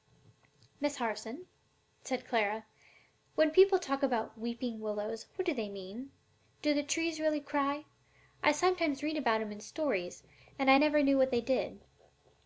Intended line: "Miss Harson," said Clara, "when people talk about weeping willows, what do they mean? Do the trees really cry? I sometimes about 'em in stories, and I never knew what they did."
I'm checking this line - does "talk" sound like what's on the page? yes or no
yes